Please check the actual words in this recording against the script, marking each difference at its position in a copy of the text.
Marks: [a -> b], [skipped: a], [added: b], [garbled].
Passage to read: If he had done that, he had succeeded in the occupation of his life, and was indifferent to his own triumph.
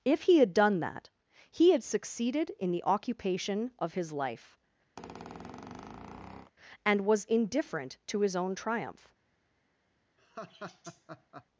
If he had done that, he had succeeded in the occupation of his life, and was indifferent to his own triumph.